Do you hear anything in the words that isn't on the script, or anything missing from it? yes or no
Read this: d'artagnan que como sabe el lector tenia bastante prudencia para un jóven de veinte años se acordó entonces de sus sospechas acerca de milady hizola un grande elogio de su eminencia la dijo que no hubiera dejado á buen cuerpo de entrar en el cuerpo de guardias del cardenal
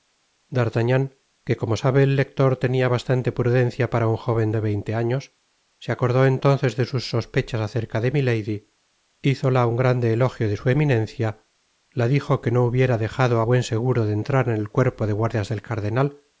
yes